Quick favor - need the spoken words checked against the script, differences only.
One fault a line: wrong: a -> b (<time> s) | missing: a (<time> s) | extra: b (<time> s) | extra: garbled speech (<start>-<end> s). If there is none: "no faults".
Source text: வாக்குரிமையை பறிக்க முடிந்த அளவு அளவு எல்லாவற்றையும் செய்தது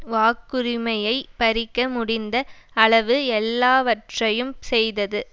missing: அளவு (3.2 s)